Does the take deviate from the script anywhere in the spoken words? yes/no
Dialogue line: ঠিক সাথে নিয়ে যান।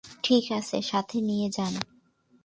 yes